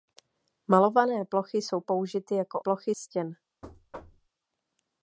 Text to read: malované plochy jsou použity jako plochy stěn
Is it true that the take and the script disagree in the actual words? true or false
false